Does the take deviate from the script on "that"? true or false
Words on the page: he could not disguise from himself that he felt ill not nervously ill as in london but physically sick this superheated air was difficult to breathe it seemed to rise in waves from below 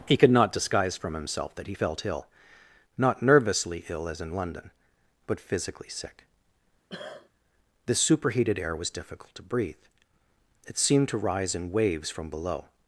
false